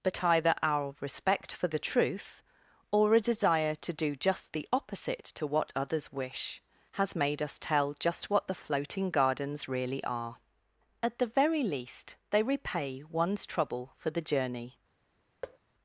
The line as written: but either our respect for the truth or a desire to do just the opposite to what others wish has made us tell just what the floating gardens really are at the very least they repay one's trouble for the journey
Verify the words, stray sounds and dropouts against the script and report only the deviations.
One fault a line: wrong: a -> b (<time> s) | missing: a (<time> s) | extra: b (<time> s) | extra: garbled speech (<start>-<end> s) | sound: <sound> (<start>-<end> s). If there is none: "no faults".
sound: thud (15.4-15.6 s)